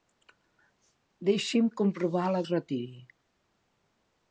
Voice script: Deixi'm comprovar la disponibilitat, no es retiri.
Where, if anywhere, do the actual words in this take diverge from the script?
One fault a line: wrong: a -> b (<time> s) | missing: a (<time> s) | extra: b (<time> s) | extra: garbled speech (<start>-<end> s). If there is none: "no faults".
missing: disponibilitat no (2.4 s)